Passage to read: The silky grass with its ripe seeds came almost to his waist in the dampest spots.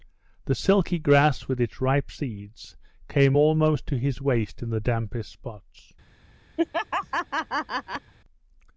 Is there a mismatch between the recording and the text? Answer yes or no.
no